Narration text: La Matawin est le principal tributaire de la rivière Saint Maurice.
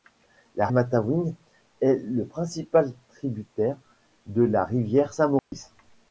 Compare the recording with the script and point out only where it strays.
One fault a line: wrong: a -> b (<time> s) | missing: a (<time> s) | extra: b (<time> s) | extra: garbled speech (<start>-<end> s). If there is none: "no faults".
no faults